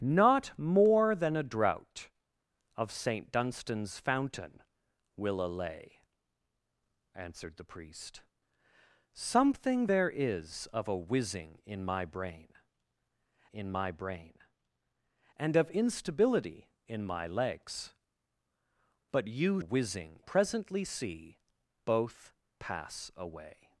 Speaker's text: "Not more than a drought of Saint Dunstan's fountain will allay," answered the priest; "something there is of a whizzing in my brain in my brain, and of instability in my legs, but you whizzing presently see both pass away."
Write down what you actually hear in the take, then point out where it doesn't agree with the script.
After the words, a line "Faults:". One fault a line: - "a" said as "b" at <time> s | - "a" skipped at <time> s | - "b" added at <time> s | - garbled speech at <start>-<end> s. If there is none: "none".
"Not more than a drought of Saint Dunstan's fountain will allay," answered the priest; "something there is of a whizzing in my brain in my brain, and of instability in my legs, but you whizzing presently see both pass away."
Faults:
none